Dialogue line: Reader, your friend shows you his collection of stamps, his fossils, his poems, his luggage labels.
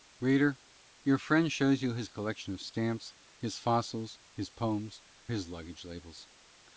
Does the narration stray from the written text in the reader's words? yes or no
no